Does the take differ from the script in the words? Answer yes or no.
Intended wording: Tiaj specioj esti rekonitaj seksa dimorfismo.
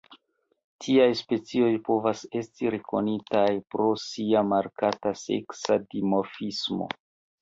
yes